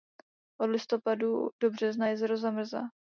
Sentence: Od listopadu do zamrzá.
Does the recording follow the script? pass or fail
fail